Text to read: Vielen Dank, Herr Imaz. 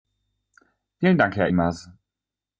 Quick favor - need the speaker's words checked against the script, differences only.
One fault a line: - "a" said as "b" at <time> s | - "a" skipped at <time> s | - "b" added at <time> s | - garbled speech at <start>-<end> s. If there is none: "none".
none